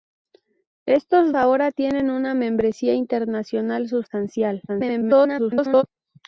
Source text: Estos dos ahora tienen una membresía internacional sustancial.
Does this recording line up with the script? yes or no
no